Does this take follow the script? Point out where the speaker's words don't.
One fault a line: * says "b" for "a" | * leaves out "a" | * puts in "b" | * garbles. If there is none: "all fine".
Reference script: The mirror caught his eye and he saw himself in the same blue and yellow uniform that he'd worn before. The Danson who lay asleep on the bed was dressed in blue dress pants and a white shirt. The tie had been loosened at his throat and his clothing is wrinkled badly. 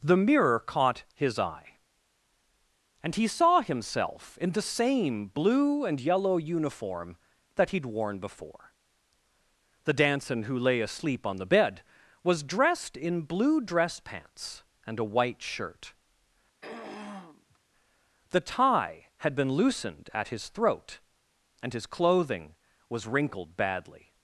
* says "was" for "is"